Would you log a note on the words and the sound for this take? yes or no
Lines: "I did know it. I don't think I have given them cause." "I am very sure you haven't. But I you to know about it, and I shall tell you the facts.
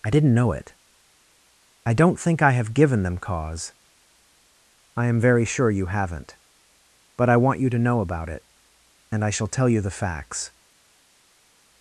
yes